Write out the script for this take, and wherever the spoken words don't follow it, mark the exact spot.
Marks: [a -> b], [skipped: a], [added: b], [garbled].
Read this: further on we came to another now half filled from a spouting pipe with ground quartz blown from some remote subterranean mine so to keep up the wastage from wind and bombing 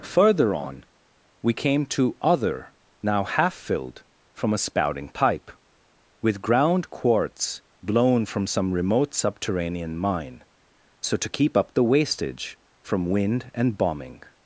further on we came to [another -> other] now half filled from a spouting pipe with ground quartz blown from some remote subterranean mine so to keep up the wastage from wind and bombing